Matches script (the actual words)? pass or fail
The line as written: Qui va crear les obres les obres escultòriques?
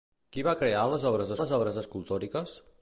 pass